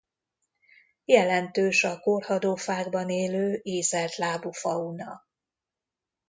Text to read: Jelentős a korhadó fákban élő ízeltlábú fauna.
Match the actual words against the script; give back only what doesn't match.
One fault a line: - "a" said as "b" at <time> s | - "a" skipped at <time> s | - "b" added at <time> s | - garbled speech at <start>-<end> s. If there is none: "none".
none